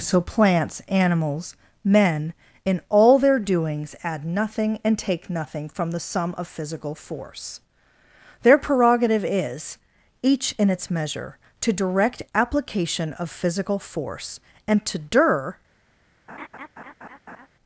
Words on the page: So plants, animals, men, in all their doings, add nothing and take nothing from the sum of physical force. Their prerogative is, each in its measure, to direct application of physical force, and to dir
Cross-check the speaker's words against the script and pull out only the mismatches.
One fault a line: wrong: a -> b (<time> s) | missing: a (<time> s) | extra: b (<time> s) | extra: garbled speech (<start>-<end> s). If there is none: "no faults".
no faults